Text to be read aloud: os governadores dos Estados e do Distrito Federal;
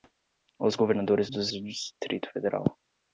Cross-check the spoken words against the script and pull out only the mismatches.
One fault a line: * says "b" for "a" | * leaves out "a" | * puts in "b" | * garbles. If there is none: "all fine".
* leaves out "Estados"